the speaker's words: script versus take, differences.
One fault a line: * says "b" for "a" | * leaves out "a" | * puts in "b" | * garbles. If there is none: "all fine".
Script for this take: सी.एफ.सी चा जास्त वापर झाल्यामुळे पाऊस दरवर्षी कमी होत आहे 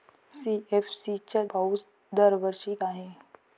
* leaves out "जास्त वापर झाल्यामुळे"
* leaves out "कमी होत"